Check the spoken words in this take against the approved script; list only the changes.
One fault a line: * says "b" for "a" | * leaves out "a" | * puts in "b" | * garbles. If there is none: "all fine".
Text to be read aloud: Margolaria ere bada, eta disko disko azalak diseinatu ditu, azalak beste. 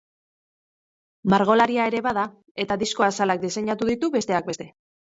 * leaves out "disko"
* says "besteak" for "azalak"